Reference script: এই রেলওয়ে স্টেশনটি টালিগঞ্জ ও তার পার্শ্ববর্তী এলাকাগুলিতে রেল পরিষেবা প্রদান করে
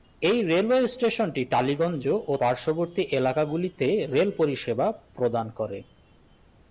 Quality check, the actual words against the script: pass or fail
fail